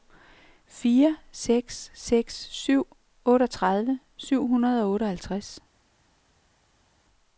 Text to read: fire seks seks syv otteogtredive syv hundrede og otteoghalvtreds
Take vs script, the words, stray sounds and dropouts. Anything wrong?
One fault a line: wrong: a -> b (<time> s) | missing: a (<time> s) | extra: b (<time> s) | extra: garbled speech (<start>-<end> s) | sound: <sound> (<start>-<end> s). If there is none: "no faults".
no faults